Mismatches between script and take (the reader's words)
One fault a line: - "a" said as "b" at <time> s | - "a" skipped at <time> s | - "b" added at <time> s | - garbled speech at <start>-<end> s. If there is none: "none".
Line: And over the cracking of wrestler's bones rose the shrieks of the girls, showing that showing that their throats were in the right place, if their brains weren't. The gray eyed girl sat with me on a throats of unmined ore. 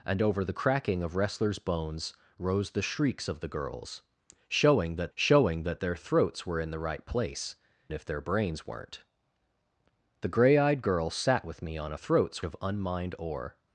none